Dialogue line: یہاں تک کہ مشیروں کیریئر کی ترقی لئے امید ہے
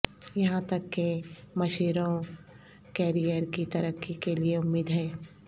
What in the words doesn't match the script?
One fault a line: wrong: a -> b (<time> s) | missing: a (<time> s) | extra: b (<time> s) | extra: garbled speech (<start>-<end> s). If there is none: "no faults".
extra: کے (4.2 s)